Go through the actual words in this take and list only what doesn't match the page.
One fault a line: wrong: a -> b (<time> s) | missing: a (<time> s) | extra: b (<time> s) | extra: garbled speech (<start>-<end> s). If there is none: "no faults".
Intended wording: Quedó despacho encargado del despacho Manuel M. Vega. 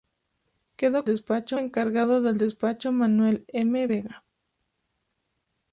no faults